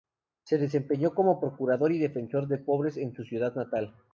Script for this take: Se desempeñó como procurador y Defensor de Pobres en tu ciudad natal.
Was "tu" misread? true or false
true